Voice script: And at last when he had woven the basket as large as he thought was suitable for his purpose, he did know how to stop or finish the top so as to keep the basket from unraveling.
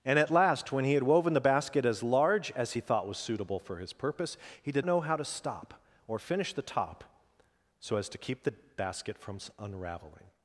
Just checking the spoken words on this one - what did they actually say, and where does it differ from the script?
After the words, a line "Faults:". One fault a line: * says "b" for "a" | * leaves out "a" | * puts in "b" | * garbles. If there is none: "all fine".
And at last when he had woven the basket as large as he thought was suitable for his purpose, he did know how to stop or finish the top so as to keep the basket from unraveling.
Faults:
all fine